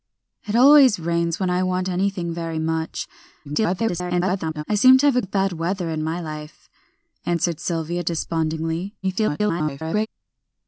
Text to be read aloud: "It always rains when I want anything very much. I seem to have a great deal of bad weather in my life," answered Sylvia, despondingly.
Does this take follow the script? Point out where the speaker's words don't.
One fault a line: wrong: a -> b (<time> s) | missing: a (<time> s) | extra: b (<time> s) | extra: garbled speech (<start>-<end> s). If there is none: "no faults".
extra: garbled speech (3.4-4.6 s)
missing: great deal (5.2 s)
extra: garbled speech (9.0-10.1 s)